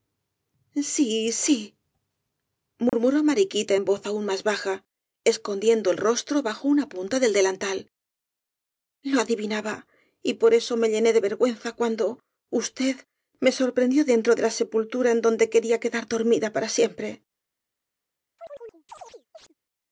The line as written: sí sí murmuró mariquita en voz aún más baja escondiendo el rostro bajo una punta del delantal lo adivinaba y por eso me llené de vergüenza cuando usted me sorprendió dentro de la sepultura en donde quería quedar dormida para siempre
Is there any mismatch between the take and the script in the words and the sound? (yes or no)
yes